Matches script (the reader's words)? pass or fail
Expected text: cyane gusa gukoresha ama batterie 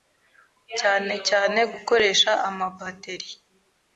fail